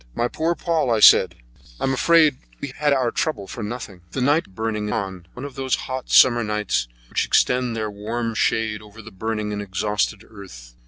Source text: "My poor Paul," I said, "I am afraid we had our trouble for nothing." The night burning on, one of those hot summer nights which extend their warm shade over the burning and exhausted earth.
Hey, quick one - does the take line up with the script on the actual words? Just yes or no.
yes